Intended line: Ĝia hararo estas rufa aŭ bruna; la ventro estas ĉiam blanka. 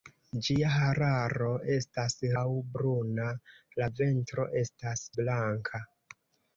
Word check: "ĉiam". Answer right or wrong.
wrong